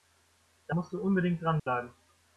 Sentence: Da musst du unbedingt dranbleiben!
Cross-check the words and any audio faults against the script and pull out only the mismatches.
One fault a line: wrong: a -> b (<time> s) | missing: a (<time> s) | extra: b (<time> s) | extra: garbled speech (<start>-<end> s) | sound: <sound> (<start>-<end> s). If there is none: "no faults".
sound: dropout (1.6-1.7 s)